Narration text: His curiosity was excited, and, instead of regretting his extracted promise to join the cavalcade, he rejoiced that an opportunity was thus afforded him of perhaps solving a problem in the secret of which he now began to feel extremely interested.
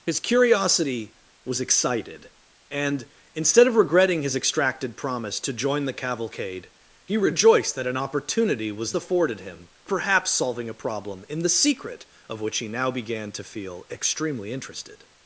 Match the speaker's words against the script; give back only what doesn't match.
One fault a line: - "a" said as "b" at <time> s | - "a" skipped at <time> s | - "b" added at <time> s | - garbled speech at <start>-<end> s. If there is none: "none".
- "thus" skipped at 8.9 s
- "of" skipped at 9.7 s